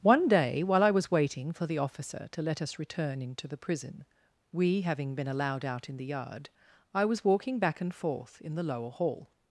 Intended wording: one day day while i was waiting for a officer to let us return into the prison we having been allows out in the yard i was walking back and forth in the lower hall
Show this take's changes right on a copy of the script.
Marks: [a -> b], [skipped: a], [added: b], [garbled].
one day [skipped: day] while i was waiting for [a -> the] officer to let us return into the prison we having been [allows -> allowed] out in the yard i was walking back and forth in the lower hall